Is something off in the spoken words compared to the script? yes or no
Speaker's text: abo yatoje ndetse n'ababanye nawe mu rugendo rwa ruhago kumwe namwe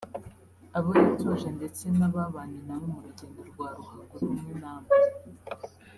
no